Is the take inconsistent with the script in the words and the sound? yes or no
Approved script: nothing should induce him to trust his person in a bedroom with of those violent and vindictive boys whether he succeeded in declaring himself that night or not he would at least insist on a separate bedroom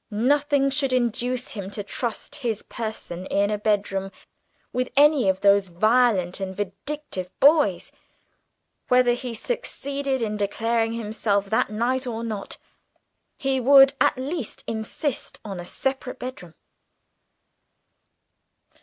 yes